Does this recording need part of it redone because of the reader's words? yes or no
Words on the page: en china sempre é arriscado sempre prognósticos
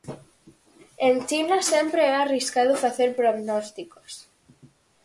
yes